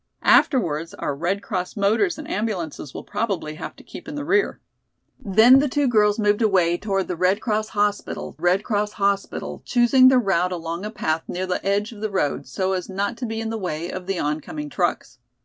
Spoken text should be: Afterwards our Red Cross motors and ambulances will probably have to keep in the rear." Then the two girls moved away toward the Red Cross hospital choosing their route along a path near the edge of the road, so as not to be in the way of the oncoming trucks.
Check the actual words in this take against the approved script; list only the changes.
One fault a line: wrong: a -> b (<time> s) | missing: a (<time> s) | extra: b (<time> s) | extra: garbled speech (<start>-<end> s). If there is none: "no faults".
extra: Red Cross hospital (8.4 s)